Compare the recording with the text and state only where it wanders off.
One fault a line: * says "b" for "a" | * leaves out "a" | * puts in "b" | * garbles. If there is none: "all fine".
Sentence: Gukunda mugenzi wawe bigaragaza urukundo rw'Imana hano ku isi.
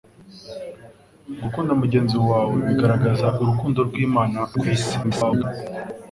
* leaves out "hano"
* garbles